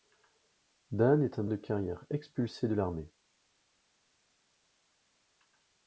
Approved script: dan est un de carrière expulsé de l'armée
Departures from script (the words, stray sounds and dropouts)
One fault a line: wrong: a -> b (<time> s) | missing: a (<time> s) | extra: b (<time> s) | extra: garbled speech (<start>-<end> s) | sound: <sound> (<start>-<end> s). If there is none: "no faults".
no faults